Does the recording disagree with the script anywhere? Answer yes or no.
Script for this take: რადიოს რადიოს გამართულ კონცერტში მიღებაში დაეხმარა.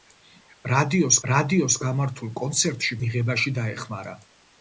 no